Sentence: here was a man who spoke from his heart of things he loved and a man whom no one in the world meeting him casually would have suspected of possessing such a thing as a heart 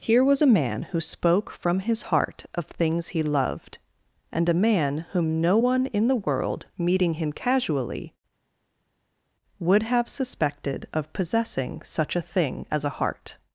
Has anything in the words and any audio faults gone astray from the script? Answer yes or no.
no